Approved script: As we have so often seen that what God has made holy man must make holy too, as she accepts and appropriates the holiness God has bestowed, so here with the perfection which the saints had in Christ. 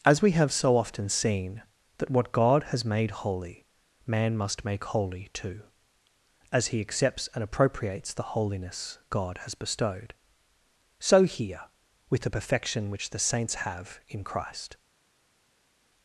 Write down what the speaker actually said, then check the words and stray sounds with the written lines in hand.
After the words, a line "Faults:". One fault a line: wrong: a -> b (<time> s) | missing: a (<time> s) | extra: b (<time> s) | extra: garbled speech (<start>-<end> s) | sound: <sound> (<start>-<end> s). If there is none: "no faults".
As we have so often seen that what God has made holy man must make holy too, as he accepts and appropriates the holiness God has bestowed, so here with the perfection which the saints have in Christ.
Faults:
wrong: she -> he (6.7 s)
wrong: had -> have (13.7 s)